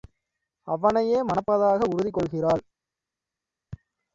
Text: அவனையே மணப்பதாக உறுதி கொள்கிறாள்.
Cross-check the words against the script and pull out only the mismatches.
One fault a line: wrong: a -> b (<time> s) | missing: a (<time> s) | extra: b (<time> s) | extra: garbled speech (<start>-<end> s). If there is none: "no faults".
no faults